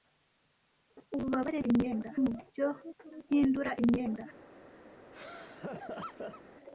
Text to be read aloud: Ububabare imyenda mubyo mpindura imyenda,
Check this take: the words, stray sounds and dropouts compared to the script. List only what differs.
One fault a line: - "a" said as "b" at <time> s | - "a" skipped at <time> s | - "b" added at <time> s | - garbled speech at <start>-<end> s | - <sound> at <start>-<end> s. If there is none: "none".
- laugh at 5.1-6.4 s